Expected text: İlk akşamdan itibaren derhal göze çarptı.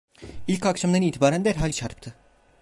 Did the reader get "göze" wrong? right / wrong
wrong